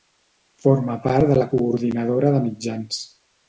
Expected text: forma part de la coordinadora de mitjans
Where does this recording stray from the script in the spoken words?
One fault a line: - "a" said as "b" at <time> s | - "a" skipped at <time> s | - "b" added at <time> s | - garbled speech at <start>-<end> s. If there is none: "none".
none